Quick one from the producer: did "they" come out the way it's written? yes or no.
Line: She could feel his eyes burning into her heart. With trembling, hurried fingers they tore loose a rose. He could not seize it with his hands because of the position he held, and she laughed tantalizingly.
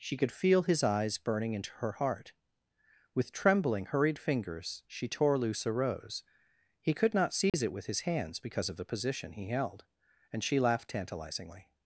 no